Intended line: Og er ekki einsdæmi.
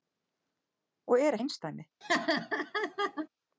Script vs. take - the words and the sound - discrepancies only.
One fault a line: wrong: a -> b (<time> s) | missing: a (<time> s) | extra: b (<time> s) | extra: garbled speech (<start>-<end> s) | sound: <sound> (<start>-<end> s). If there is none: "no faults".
missing: ekki (1.4 s)
sound: laugh (2.0-3.3 s)